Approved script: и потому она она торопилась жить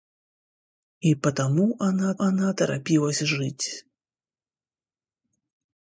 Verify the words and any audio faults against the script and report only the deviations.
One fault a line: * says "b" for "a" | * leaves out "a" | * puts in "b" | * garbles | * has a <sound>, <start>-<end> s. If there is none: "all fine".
all fine